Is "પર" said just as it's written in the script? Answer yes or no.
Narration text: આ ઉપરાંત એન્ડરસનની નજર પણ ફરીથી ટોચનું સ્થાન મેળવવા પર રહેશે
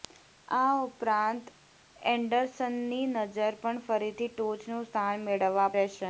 no